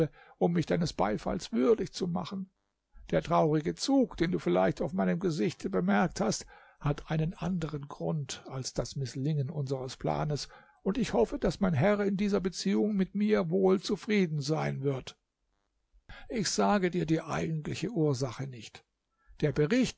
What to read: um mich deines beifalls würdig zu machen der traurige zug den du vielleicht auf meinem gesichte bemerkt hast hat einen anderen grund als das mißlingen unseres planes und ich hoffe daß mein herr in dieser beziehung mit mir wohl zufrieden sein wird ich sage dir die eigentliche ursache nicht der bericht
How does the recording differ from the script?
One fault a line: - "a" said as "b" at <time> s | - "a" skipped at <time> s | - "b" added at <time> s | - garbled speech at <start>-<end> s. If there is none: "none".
none